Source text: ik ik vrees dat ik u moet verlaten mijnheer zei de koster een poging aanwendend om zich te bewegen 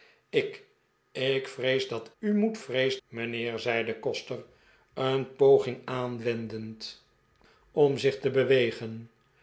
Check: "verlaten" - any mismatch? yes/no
yes